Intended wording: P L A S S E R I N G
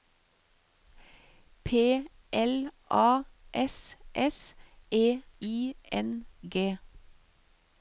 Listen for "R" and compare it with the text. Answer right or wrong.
wrong